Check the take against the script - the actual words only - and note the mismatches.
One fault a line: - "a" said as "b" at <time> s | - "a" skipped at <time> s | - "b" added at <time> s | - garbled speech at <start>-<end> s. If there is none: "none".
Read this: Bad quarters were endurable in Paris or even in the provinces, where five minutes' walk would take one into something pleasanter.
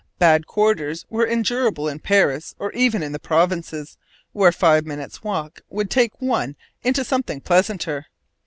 none